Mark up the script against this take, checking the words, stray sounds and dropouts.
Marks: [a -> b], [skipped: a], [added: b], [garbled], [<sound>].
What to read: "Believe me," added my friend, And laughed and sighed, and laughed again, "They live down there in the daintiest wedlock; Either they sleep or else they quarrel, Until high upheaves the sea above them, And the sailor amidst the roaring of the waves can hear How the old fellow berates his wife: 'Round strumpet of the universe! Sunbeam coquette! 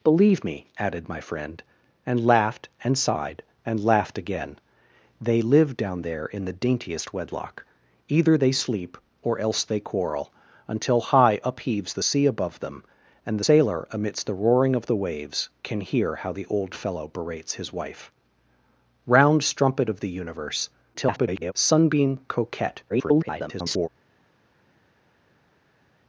"Believe me," added my friend, And laughed and sighed, and laughed again, "They live down there in the daintiest wedlock; Either they sleep or else they quarrel, Until high upheaves the sea above them, And [skipped: the] sailor amidst the roaring of the waves can hear How the old fellow berates his wife: 'Round strumpet of the universe! [garbled] Sunbeam coquette! [garbled]